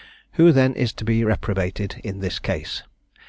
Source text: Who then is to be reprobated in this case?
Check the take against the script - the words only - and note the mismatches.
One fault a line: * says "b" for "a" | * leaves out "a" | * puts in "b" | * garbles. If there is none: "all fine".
all fine